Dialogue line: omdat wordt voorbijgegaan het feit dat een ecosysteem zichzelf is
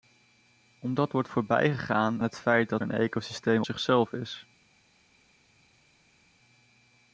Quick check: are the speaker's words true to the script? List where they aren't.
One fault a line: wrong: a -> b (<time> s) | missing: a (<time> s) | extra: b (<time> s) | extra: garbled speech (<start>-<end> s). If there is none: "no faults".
no faults